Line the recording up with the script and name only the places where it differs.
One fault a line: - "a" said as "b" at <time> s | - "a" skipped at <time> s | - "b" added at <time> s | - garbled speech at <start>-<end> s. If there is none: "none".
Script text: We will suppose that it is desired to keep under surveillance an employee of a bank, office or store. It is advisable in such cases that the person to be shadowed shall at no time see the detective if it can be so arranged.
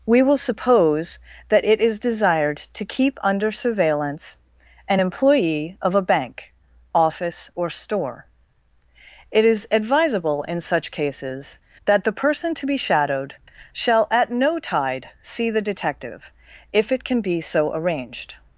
- "time" said as "tide" at 14.6 s